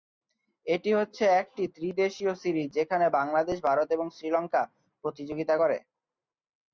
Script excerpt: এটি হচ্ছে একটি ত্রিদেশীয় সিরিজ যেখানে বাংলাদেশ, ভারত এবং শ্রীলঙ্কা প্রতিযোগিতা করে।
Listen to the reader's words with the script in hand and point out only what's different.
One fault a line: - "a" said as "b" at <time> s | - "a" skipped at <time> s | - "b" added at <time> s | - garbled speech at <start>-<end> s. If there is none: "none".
none